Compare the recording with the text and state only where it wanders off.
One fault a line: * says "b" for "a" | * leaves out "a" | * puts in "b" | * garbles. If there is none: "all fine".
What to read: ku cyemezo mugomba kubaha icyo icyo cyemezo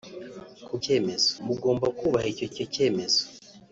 all fine